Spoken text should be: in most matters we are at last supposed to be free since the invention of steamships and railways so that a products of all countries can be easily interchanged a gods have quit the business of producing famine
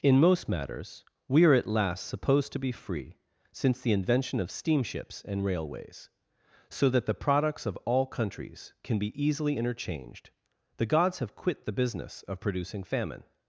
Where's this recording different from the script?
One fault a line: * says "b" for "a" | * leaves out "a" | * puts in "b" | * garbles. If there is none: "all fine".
* says "the" for "a"
* says "the" for "a"